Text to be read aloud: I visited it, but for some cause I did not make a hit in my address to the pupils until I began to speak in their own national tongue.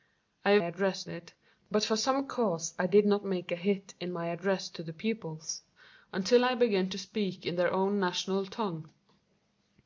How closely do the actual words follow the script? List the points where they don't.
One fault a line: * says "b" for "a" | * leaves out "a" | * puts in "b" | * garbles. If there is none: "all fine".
* says "address" for "visited"